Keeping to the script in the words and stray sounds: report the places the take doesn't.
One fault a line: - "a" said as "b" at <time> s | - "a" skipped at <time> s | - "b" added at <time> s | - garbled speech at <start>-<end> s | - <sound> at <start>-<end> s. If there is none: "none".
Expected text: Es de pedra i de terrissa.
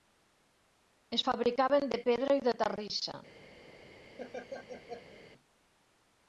- "fabricaven" added at 1.2 s
- laugh at 4.2-5.2 s